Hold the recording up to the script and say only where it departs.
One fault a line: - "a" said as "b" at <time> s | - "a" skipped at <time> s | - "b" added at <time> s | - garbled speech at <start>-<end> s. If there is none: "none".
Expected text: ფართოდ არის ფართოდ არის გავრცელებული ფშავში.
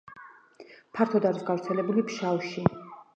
- "ფართოდ არის" skipped at 1.4 s